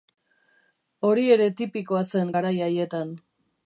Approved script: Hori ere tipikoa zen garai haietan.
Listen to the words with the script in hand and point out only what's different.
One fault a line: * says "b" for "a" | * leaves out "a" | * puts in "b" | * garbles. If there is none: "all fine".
all fine